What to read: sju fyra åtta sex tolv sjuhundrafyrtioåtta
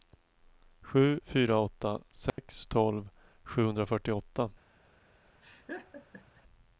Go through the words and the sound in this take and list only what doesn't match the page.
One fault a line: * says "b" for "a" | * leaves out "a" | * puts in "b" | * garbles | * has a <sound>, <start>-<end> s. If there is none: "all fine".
* has a dropout, 2.3-2.4 s
* has a laugh, 5.4-6.4 s